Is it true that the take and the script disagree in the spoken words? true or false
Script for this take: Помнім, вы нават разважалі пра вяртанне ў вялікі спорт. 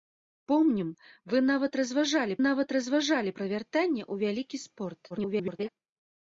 true